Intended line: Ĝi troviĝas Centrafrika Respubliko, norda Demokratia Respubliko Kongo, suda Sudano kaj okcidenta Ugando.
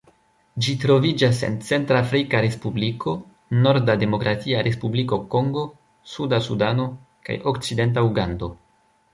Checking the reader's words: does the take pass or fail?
fail